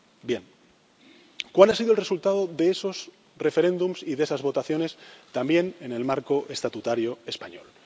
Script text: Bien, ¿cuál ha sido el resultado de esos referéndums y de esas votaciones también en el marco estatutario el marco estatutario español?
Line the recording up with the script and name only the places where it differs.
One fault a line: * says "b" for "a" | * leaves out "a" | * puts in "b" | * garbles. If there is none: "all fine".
* leaves out "el marco estatutario"